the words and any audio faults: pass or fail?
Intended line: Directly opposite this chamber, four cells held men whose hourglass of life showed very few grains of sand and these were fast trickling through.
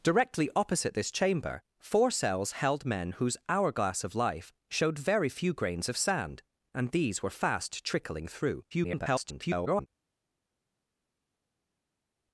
fail